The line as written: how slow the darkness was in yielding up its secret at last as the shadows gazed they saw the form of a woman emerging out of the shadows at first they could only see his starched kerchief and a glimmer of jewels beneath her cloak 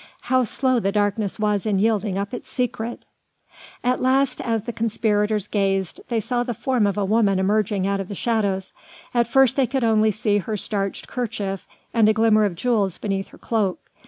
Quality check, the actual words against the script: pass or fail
fail